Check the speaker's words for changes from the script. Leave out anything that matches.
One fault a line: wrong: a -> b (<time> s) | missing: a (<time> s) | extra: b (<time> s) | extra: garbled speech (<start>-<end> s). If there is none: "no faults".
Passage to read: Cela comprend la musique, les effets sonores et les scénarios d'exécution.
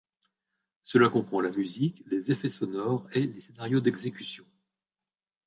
no faults